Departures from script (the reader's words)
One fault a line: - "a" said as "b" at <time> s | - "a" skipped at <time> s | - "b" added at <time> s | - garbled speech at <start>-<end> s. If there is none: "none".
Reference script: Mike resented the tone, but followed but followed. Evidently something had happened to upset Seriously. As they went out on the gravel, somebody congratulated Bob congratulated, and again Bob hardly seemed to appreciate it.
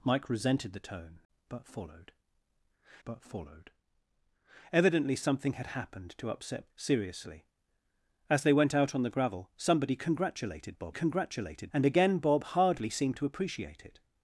none